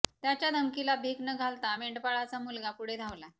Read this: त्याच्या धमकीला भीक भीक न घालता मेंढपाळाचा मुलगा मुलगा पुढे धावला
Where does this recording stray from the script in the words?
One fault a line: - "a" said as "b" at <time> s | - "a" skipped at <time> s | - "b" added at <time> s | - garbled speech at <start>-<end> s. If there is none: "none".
- "भीक" skipped at 1.2 s
- "मुलगा" skipped at 2.7 s